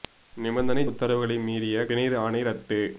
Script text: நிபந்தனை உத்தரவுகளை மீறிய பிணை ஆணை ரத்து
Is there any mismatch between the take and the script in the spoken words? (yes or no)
no